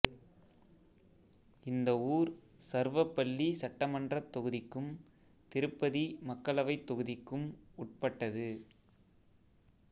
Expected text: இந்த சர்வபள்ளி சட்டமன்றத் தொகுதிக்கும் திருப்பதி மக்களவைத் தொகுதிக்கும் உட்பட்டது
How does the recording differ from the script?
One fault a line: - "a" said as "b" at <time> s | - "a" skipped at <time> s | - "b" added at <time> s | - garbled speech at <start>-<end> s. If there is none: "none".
- "ஊர்" added at 2.1 s